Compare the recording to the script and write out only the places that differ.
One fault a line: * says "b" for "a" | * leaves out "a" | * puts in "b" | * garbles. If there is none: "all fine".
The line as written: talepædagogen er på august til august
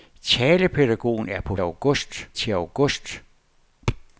all fine